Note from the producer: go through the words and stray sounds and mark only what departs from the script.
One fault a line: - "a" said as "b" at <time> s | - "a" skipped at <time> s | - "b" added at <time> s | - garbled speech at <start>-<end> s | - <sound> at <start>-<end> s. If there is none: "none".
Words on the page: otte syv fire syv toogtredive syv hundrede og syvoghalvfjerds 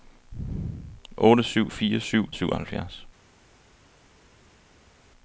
- "toogtredive syv hundrede" skipped at 2.3 s